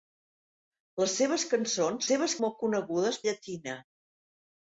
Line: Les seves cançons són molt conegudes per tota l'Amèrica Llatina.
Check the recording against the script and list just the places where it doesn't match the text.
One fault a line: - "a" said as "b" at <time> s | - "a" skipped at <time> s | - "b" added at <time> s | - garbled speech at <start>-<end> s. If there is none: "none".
- "són" said as "seves" at 2.1 s
- "per tota l'Amèrica" skipped at 3.2 s